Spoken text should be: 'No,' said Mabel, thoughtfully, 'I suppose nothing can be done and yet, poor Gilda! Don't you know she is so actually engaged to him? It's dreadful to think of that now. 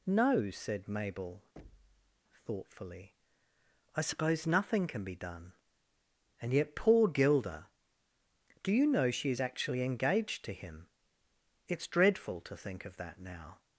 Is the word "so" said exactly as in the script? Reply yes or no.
no